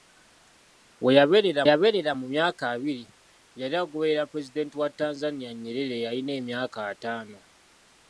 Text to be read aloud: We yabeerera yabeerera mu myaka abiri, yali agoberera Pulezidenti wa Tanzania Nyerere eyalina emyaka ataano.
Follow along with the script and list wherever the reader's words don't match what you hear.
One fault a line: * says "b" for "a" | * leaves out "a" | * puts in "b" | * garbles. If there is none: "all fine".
all fine